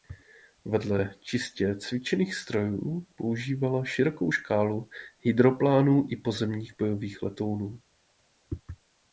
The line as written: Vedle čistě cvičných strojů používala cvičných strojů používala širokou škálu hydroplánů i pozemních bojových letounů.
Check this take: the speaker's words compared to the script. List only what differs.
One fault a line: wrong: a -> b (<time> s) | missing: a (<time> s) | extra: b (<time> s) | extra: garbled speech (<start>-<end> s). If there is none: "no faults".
missing: cvičných strojů používala (3.8 s)